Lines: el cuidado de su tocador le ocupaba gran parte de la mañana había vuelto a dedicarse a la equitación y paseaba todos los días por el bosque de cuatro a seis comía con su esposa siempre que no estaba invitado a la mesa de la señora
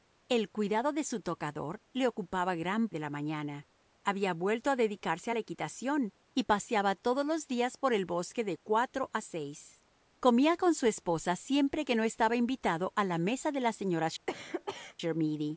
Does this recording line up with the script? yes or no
no